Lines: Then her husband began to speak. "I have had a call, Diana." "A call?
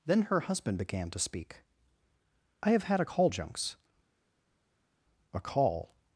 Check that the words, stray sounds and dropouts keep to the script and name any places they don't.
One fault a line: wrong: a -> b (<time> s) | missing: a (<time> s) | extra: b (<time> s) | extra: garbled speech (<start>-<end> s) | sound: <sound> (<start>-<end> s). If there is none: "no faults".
wrong: Diana -> Junks (3.3 s)